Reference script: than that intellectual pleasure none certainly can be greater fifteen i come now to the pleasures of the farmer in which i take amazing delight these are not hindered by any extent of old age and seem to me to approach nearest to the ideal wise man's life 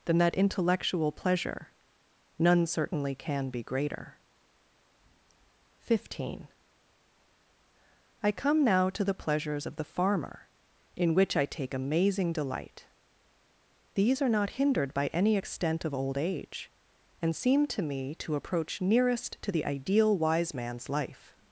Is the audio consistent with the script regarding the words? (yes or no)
yes